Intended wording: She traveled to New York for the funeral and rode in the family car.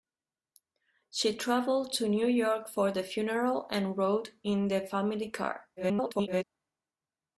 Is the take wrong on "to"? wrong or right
right